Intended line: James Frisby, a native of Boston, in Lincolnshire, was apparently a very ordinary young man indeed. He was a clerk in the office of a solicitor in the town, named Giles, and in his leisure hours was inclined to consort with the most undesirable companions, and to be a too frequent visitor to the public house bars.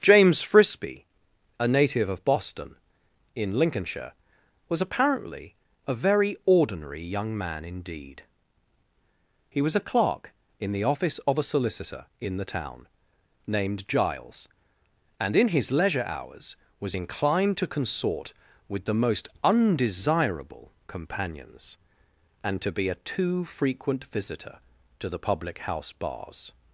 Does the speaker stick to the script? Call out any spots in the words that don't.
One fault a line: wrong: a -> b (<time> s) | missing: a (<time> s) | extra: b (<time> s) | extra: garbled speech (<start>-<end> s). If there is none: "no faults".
no faults